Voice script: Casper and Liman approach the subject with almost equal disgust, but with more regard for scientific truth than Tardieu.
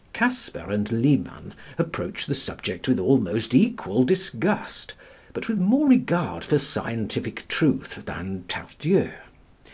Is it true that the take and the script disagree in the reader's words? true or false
false